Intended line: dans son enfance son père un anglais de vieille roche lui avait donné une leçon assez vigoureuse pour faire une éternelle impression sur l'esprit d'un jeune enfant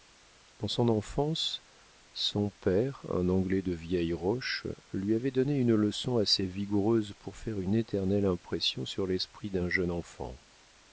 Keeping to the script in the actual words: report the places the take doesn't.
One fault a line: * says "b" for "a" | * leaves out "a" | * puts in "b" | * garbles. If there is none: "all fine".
all fine